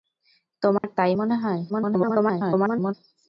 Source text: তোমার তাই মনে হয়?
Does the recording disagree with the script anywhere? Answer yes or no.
yes